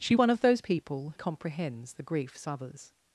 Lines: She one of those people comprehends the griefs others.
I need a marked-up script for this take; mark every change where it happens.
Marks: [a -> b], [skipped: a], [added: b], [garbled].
She one of those people comprehends the griefs others.